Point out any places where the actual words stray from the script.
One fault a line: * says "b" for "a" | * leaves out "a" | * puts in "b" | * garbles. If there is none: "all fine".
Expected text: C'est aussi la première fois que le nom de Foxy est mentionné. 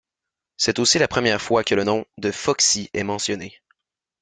all fine